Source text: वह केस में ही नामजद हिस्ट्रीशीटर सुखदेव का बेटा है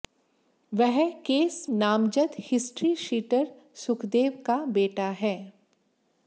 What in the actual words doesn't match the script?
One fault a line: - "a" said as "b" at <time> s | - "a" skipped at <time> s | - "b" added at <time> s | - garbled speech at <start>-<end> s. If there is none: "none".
- "में ही" skipped at 1.7 s